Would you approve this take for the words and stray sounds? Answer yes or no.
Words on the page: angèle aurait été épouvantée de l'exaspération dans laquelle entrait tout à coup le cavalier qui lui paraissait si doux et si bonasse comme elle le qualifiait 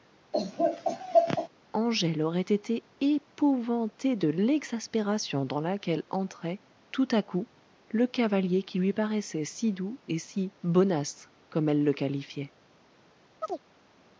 no